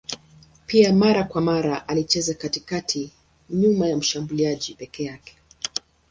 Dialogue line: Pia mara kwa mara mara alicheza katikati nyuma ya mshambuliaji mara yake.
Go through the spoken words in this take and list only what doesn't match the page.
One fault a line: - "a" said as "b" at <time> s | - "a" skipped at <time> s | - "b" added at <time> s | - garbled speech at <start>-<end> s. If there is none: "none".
- "mara" skipped at 1.9 s
- "mara" said as "peke" at 4.7 s